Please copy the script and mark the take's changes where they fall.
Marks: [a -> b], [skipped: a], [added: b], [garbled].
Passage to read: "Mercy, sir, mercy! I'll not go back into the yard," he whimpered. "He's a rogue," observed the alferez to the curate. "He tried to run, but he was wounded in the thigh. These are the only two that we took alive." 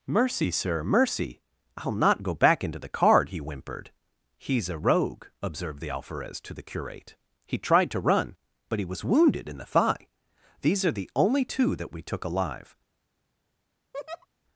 "Mercy, sir, mercy! I'll not go back into the [yard," -> card] he whimpered. "He's a rogue," observed the alferez to the curate. "He tried to run, but he was wounded in the thigh. These are the only two that we took alive."